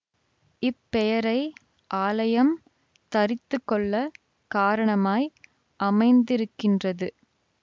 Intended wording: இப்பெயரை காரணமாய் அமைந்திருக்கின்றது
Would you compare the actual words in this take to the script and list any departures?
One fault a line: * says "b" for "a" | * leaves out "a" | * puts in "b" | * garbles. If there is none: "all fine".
* puts in "ஆலயம் தரித்துக்கொள்ளக்"